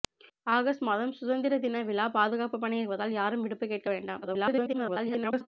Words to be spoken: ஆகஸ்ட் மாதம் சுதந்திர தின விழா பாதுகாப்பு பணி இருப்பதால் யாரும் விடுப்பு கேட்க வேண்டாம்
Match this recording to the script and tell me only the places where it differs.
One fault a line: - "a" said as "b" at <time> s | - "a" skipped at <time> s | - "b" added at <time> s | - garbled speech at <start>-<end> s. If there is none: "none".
- garbled speech at 4.2-5.5 s